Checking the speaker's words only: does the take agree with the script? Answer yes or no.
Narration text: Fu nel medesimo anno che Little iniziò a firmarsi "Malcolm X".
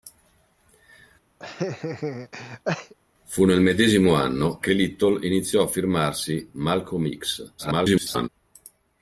no